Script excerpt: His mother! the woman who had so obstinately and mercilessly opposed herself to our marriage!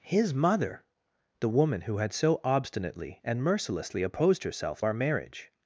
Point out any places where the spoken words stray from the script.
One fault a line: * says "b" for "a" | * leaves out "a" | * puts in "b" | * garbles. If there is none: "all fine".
* leaves out "to"